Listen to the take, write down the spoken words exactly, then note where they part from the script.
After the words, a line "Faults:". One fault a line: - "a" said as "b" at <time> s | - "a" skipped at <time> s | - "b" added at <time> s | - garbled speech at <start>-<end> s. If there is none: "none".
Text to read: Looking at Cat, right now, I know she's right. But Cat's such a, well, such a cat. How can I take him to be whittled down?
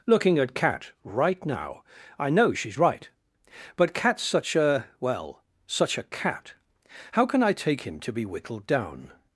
Looking at Cat, right now, I know she's right. But Cat's such a, well, such a cat. How can I take him to be whittled down?
Faults:
none